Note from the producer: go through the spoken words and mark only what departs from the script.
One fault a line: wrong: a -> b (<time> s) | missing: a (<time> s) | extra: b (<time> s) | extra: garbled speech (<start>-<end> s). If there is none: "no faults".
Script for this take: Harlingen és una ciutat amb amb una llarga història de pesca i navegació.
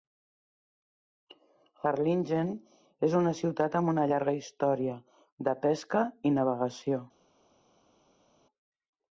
missing: amb (3.9 s)